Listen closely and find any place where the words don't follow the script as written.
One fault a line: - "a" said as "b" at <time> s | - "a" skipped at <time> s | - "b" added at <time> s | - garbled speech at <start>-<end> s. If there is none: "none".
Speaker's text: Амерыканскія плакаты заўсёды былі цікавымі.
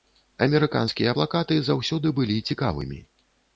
none